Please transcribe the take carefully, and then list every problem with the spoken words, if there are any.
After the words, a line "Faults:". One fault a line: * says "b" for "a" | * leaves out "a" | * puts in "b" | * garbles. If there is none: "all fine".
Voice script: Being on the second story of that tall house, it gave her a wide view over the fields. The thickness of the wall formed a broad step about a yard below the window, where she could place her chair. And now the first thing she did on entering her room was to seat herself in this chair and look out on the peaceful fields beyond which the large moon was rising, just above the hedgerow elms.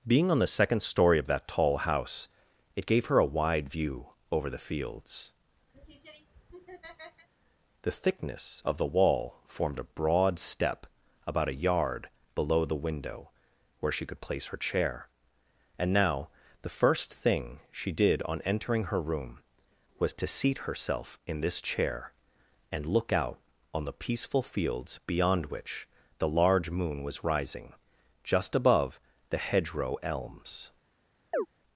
Being on the second story of that tall house, it gave her a wide view over the fields. The thickness of the wall formed a broad step about a yard below the window, where she could place her chair. And now the first thing she did on entering her room was to seat herself in this chair and look out on the peaceful fields beyond which the large moon was rising, just above the hedgerow elms.
Faults:
all fine